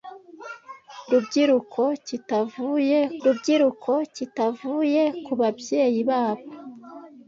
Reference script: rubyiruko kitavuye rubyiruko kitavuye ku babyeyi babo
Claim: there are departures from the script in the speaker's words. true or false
false